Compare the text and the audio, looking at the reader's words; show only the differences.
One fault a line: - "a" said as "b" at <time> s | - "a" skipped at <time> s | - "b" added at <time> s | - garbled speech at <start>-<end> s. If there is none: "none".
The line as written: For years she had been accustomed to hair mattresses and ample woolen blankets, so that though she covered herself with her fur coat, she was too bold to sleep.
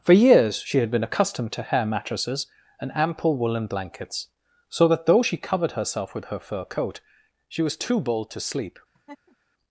none